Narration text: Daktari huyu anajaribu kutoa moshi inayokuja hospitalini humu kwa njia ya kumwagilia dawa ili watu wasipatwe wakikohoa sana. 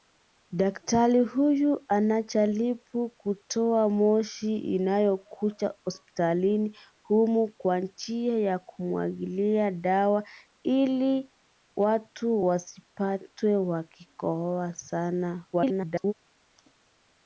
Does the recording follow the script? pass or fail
fail